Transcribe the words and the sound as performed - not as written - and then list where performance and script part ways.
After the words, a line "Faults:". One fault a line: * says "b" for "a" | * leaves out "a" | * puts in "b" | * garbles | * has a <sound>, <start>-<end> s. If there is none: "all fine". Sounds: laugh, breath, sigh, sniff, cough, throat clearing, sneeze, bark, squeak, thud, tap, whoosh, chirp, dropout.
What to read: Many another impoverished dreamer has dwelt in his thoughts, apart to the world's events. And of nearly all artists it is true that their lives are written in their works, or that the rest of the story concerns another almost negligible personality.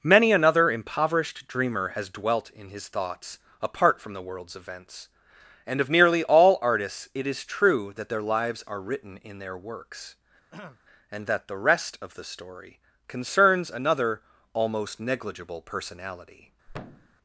Many another impoverished dreamer has dwelt in his thoughts, apart from the world's events. And of nearly all artists it is true that their lives are written in their works, and that the rest of the story concerns another almost negligible personality.
Faults:
* says "from" for "to"
* has a throat clearing, 10.5-10.8 s
* says "and" for "or"
* has a thud, 16.7-17.2 s